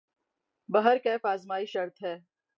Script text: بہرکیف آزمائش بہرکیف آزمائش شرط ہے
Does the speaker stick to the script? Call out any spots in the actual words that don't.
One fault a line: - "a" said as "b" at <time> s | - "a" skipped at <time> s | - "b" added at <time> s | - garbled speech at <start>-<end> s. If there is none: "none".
- "بہرکیف آزمائش" skipped at 1.7 s